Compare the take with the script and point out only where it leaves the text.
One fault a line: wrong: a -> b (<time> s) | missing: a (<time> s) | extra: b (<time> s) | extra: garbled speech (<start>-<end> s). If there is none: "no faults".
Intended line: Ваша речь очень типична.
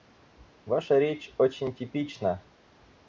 no faults